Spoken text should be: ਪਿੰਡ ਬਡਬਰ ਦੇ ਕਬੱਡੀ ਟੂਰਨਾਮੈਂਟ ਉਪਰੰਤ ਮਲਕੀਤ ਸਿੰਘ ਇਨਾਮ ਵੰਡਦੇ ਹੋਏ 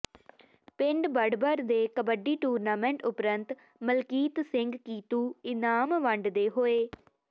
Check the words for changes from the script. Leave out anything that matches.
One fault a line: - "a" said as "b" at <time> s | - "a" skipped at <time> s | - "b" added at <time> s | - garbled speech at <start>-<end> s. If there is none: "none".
- "ਕੀਤੂ" added at 4.8 s